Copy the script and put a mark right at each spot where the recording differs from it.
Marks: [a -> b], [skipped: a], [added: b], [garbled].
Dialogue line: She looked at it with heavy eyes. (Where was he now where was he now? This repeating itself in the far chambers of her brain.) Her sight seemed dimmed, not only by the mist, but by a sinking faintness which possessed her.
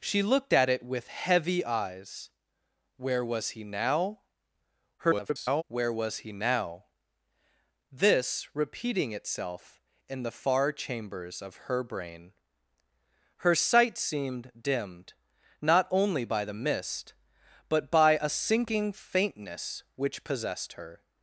She looked at it with heavy eyes. (Where was he now [garbled] where was he now? This repeating itself in the far chambers of her brain.) Her sight seemed dimmed, not only by the mist, but by a sinking faintness which possessed her.